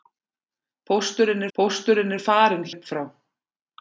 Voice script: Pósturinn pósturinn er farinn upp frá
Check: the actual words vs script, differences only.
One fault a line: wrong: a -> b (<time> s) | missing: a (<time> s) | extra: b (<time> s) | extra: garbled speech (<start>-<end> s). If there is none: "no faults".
no faults